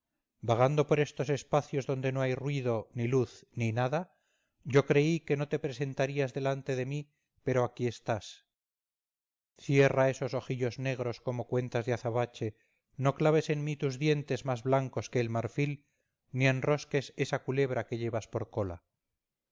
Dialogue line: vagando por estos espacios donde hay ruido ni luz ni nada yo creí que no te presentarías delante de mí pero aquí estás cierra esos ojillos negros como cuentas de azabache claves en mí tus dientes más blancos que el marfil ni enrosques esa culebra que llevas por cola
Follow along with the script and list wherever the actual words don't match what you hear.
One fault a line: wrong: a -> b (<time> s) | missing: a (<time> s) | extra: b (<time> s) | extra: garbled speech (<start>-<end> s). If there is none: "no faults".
extra: no (2.1 s)
extra: no (13.0 s)